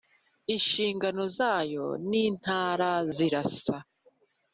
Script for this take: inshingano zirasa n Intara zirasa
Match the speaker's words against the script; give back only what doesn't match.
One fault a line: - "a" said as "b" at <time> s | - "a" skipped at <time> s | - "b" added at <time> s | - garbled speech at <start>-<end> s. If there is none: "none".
- "zirasa" said as "zayo" at 1.4 s